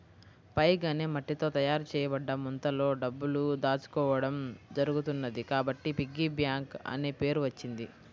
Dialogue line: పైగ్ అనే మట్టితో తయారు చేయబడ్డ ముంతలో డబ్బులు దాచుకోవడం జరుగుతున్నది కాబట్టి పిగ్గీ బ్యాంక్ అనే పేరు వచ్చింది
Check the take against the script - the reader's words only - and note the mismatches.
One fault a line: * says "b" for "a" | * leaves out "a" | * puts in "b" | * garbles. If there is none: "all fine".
all fine